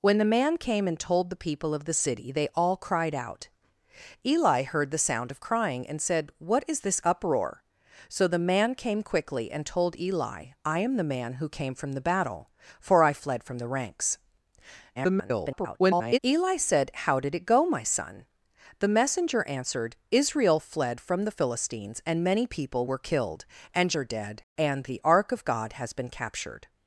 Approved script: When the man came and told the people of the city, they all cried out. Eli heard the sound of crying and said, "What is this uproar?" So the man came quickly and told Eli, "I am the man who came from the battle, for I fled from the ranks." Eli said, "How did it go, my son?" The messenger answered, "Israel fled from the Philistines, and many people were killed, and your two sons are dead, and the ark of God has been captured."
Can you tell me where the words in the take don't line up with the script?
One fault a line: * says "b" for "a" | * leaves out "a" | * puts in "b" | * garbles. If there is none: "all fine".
* garbles
* leaves out "your two sons"